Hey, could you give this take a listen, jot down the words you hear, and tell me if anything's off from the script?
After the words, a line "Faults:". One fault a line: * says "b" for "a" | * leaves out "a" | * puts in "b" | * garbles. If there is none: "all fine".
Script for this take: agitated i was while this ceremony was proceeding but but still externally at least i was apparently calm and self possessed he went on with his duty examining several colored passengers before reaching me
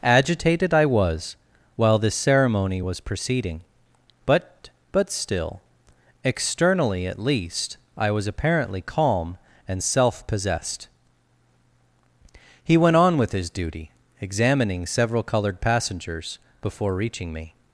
agitated i was while this ceremony was proceeding but but still externally at least i was apparently calm and self possessed he went on with his duty examining several colored passengers before reaching me
Faults:
all fine